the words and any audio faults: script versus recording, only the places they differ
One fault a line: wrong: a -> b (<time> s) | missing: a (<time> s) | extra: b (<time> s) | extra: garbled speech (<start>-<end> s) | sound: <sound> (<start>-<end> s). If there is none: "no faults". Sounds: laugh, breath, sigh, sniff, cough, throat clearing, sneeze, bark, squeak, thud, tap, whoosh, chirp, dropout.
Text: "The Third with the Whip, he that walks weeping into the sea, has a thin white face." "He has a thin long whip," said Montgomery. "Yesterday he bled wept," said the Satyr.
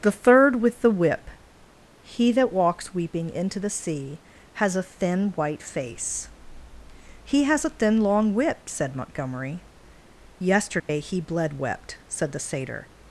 sound: dropout (10.8-10.9 s)